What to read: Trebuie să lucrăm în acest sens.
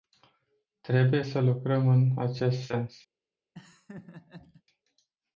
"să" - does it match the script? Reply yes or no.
yes